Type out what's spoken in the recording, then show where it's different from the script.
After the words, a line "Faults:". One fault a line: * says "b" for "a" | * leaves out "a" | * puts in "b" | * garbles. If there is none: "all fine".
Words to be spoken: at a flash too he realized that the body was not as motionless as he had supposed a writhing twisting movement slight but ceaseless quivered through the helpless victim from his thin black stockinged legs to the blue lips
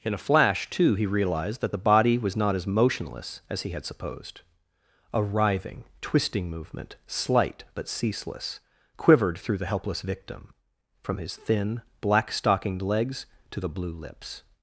in a flash too he realized that the body was not as motionless as he had supposed a writhing twisting movement slight but ceaseless quivered through the helpless victim from his thin black stockinged legs to the blue lips
Faults:
* says "in" for "at"